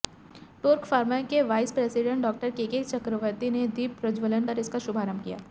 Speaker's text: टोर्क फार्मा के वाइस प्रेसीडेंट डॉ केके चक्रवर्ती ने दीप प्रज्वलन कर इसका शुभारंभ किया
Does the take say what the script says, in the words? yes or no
yes